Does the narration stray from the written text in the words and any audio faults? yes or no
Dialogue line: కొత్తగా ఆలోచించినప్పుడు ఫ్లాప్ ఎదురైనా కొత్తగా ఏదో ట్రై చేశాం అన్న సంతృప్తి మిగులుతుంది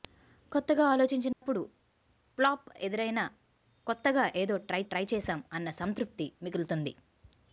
yes